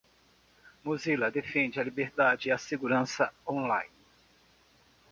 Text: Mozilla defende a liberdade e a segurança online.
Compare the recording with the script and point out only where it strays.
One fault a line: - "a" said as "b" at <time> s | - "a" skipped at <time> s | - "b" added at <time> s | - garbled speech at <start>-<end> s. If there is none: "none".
none